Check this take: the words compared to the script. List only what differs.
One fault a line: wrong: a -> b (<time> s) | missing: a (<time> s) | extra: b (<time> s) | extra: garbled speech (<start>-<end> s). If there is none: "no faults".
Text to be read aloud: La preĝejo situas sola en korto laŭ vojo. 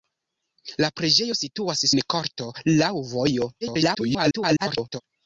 missing: sola (1.9 s)
extra: garbled speech (3.6-5.0 s)